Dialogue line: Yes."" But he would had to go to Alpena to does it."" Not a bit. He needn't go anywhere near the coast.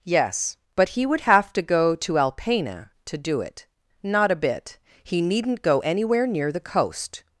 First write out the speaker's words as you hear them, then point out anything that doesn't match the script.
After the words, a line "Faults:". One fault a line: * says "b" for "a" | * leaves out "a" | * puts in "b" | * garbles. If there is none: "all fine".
Yes."" But he would have to go to Alpena to do it."" Not a bit. He needn't go anywhere near the coast.
Faults:
* says "have" for "had"
* says "do" for "does"